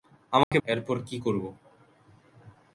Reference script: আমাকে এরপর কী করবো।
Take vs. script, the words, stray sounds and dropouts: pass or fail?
fail